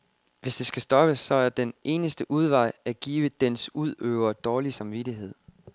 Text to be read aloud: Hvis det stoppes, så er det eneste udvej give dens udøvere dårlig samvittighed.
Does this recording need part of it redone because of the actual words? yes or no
yes